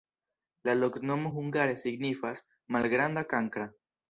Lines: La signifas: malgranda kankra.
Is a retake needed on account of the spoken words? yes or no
yes